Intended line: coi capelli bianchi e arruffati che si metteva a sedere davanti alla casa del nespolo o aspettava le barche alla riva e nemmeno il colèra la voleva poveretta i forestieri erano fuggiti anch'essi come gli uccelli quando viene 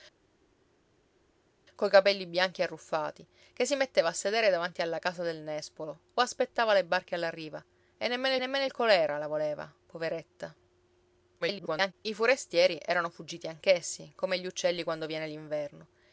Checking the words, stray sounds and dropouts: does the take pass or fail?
fail